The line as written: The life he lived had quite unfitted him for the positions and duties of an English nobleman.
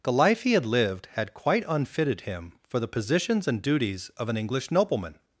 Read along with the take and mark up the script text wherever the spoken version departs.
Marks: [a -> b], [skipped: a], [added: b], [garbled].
The life he [added: had] lived had quite unfitted him for the positions and duties of an English nobleman.